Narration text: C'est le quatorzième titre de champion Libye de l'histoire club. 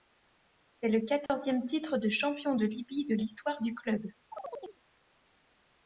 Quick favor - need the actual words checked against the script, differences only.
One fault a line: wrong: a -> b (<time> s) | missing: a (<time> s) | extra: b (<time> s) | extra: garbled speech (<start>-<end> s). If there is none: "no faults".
extra: de (2.5 s)
extra: du (3.6 s)